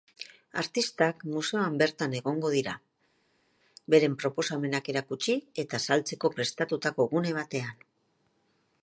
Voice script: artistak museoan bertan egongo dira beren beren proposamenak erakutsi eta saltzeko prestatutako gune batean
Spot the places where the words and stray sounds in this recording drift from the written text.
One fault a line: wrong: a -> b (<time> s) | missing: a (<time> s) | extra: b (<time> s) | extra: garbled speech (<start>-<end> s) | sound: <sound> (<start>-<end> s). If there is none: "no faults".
missing: beren (4.1 s)